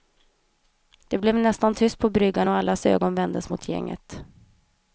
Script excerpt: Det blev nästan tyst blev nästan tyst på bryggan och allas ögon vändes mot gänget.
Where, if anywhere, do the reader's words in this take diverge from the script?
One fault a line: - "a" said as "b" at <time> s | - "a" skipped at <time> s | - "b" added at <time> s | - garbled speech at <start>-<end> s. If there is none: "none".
- "blev nästan tyst" skipped at 2.0 s